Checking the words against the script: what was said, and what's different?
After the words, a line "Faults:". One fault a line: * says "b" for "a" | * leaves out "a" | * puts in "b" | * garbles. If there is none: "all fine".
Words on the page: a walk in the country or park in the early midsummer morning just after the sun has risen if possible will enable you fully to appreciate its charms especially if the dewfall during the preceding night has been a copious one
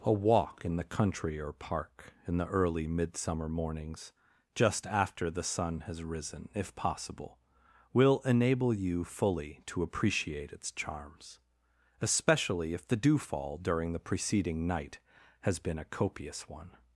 a walk in the country or park in the early midsummer mornings just after the sun has risen if possible will enable you fully to appreciate its charms especially if the dewfall during the preceding night has been a copious one
Faults:
* says "mornings" for "morning"